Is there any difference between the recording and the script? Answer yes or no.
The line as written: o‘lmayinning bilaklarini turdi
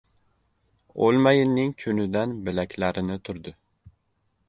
yes